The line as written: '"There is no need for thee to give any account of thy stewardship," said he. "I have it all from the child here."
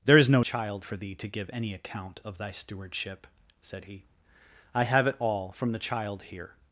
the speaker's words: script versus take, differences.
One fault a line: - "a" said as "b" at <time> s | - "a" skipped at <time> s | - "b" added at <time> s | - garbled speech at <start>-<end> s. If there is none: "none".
- "need" said as "child" at 0.4 s